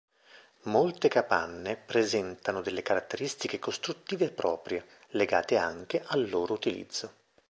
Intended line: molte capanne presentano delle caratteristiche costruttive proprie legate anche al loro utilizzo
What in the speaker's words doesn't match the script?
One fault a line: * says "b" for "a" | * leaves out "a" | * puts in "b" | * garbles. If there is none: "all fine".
all fine